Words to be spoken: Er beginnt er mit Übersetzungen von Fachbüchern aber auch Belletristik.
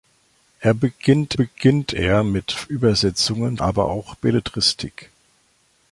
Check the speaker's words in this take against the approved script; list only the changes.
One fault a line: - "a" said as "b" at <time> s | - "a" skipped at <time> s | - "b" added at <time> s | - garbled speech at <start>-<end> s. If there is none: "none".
- "beginnt" added at 1.3 s
- "von Fachbüchern" skipped at 3.6 s